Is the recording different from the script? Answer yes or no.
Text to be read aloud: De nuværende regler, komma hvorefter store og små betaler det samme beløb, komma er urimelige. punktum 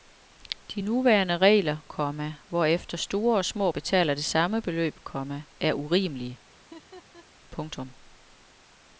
no